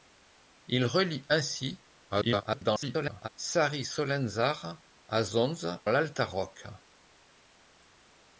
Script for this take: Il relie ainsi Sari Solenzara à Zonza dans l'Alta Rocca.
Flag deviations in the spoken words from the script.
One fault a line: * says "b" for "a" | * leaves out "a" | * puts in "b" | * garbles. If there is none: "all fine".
* garbles
* leaves out "dans"